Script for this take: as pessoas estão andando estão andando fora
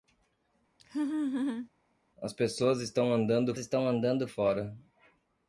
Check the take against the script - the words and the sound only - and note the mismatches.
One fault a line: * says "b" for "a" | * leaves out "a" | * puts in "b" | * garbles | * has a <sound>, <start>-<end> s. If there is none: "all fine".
* has a laugh, 0.8-1.7 s